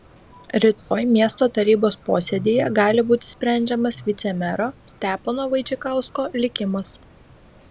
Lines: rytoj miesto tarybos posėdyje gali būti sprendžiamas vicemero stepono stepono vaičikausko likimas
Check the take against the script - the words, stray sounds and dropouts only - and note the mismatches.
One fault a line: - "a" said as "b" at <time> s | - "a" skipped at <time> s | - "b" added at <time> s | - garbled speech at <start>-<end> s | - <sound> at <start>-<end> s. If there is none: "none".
- dropout at 0.8-0.9 s
- "stepono" skipped at 5.5 s